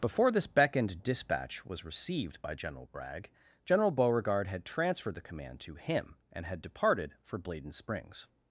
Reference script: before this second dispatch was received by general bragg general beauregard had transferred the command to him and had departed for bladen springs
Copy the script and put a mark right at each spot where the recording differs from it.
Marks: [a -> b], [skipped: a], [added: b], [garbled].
before this [second -> beckoned] dispatch was received by general bragg general beauregard had transferred the command to him and had departed for bladen springs